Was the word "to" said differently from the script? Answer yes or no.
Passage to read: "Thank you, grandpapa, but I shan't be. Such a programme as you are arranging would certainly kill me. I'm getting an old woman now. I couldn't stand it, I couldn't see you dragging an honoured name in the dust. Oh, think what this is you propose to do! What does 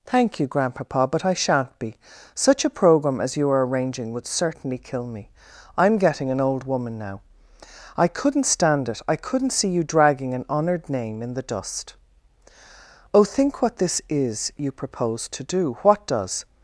no